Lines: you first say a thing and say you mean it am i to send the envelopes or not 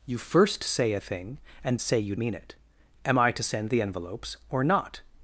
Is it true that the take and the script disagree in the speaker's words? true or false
false